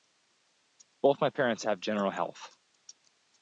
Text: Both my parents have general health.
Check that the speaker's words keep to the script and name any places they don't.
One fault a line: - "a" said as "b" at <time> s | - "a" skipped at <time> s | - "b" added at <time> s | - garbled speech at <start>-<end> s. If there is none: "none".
none